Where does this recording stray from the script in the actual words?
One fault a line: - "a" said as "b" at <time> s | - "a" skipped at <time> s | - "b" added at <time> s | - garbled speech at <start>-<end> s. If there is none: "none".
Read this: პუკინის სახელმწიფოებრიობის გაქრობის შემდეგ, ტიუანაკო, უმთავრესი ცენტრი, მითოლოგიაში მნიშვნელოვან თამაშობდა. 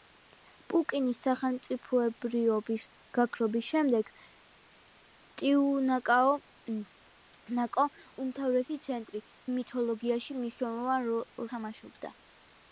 none